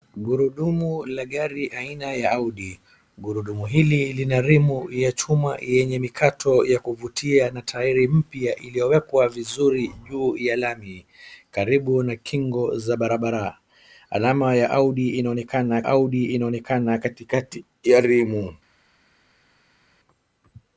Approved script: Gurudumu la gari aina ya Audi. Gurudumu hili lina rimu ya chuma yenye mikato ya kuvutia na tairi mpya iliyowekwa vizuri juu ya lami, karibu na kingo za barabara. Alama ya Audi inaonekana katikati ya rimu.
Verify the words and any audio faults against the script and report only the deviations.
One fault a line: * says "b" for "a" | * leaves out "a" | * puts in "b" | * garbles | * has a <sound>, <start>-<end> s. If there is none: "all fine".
* puts in "Audi inaonekana"